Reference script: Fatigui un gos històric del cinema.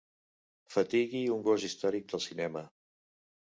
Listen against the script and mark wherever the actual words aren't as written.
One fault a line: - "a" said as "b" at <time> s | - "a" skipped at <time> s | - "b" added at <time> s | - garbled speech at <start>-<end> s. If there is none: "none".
none